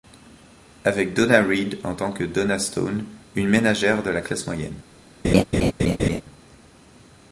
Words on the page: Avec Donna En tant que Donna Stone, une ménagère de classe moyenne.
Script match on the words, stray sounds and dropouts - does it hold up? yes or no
no